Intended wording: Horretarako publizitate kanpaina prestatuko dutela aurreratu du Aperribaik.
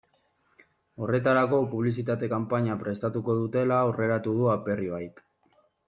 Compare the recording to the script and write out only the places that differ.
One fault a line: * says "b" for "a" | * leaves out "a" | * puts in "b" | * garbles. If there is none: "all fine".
all fine